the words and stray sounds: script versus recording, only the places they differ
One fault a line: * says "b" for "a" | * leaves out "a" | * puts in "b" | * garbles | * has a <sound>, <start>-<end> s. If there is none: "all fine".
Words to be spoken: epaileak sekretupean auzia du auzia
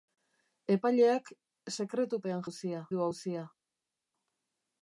all fine